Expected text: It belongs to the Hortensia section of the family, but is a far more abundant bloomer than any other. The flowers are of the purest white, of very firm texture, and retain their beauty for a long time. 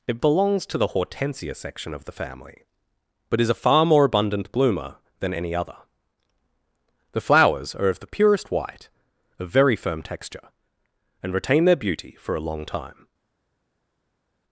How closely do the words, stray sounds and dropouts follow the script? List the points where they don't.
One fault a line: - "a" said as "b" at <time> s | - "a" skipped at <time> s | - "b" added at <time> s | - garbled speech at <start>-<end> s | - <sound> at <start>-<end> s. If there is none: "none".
none